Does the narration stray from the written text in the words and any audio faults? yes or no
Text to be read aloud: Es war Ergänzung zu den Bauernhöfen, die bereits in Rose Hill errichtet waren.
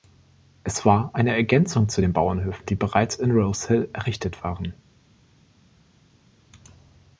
yes